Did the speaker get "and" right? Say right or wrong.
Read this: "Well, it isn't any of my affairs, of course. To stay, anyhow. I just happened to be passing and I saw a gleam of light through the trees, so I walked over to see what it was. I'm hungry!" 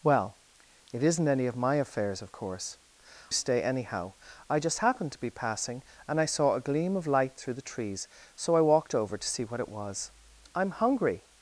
right